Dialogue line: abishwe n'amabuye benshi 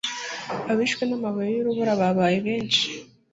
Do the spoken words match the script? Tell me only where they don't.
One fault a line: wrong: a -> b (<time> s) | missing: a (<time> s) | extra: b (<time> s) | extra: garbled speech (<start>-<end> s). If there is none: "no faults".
extra: y'urubura babaye (1.5 s)